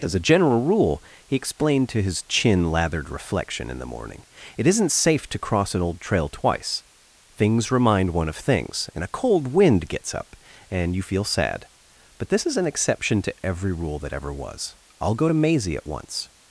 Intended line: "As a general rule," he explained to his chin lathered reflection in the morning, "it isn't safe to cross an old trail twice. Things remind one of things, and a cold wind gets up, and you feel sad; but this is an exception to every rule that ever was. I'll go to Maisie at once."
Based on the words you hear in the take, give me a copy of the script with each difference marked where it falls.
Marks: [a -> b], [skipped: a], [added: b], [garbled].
"As a general rule," he explained to his chin lathered reflection in the morning, "it isn't safe to cross an old trail twice. Things remind one of things, and a cold wind gets up, and you feel sad; but this is an exception to every rule that ever was. I'll go to Maisie at once."